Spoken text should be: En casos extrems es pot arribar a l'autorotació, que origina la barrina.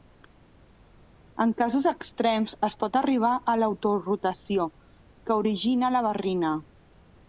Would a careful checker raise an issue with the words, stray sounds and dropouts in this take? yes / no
no